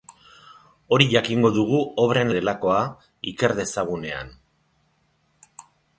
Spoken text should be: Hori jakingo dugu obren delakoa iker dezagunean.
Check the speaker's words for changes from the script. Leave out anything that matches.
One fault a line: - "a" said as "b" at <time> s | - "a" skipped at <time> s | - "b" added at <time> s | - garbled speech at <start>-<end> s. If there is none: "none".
none